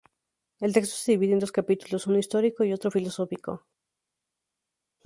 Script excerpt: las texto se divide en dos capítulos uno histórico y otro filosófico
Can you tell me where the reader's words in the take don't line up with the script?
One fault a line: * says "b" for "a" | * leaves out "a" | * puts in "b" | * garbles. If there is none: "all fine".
* says "el" for "las"